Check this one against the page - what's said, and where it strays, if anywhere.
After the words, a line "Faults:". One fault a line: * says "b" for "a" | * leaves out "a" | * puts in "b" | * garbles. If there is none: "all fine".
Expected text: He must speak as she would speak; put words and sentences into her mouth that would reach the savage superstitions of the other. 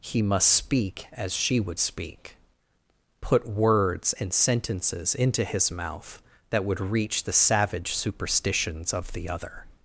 He must speak as she would speak; put words and sentences into his mouth that would reach the savage superstitions of the other.
Faults:
* says "his" for "her"